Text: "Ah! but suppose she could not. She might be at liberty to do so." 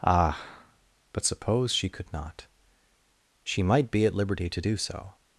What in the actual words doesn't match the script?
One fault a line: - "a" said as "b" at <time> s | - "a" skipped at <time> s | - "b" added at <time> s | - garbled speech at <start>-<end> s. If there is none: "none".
none